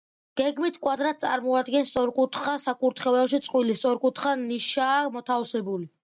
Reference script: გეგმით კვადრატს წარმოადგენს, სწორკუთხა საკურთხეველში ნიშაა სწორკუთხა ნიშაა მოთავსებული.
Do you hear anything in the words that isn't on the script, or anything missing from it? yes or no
yes